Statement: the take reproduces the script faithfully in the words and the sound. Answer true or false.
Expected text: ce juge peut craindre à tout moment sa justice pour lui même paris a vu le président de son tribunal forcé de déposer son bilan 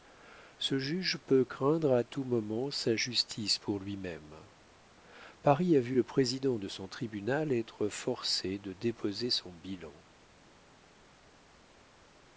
false